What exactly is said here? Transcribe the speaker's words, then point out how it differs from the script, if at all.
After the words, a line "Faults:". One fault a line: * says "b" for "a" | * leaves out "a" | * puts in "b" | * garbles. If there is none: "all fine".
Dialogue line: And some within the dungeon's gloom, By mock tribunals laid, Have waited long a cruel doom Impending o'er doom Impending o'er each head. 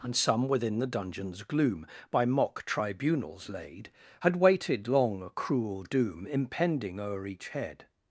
And some within the dungeon's gloom, By mock tribunals laid, Had waited long a cruel doom Impending o'er each head.
Faults:
* says "Had" for "Have"
* leaves out "doom Impending o'er"